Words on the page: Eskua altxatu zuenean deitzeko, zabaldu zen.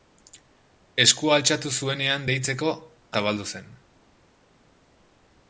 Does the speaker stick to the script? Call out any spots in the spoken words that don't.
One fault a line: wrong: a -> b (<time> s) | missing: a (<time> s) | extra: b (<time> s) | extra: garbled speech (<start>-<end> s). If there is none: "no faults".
no faults